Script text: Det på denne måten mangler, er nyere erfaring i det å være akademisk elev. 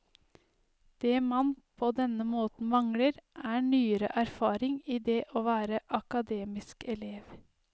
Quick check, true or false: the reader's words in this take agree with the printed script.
false